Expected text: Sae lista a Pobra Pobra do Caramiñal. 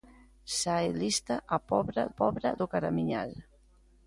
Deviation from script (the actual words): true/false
false